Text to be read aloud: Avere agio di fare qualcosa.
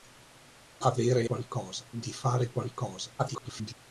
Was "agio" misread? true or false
true